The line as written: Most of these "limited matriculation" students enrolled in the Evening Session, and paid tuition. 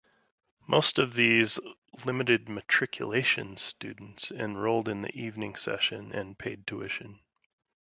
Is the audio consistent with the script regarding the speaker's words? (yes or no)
yes